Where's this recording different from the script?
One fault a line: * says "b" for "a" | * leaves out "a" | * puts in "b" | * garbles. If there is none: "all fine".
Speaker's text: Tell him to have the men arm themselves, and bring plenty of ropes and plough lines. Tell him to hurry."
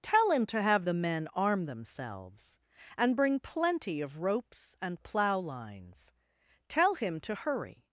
all fine